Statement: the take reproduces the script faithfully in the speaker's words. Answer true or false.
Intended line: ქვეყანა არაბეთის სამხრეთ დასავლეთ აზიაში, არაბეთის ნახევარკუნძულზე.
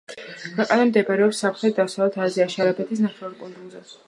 false